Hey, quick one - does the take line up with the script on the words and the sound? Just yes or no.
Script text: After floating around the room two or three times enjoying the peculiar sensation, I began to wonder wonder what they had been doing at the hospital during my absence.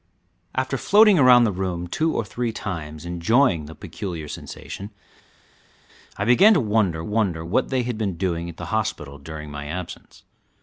yes